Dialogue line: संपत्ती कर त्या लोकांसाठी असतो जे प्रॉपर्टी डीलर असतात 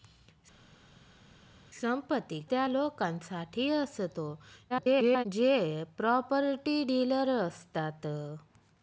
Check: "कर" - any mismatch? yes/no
yes